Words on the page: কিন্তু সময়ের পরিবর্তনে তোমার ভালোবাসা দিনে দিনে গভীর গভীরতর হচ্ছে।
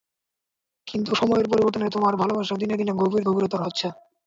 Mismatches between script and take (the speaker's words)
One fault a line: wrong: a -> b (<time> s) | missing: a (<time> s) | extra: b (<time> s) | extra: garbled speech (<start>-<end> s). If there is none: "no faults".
no faults